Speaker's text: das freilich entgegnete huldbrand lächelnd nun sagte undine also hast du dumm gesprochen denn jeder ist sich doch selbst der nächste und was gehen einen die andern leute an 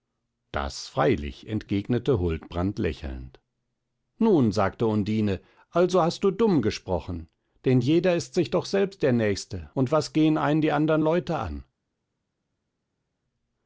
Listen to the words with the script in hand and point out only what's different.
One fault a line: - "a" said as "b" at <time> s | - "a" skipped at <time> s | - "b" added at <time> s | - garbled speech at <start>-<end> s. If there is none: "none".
none